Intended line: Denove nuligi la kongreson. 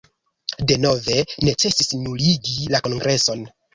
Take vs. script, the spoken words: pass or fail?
fail